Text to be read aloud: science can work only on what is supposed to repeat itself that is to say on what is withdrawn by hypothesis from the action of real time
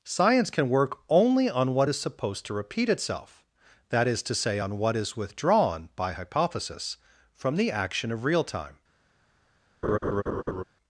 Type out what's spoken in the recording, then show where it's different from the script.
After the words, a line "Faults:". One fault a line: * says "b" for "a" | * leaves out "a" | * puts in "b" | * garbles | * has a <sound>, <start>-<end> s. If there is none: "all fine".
science can work only on what is supposed to repeat itself that is to say on what is withdrawn by hypothesis from the action of real time
Faults:
* has a laugh, 9.8-10.6 s